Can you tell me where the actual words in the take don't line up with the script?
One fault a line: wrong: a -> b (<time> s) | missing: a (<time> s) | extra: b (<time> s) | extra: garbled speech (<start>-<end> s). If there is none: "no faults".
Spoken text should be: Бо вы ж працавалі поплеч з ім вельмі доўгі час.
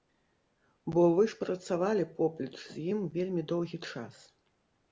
no faults